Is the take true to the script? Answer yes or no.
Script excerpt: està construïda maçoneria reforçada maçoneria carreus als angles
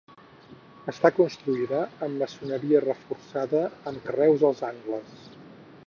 no